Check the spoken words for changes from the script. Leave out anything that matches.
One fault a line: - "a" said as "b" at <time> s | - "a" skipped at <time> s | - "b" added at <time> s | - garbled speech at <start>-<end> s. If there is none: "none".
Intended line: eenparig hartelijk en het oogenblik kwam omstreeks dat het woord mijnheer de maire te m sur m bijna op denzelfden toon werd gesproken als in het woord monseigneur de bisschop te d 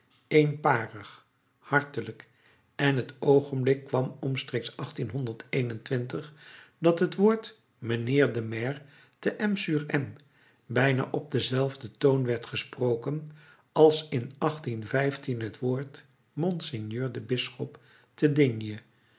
none